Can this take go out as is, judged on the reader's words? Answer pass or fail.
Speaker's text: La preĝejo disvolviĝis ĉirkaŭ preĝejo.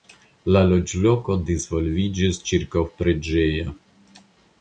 fail